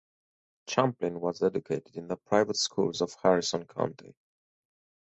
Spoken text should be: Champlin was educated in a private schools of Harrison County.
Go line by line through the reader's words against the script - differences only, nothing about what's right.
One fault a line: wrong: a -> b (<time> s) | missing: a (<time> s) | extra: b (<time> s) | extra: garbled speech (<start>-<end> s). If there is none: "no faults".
wrong: a -> the (2.1 s)